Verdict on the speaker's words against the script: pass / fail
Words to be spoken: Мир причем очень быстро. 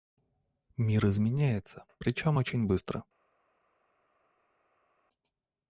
fail